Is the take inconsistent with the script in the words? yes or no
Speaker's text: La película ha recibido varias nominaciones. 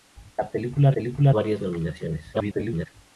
yes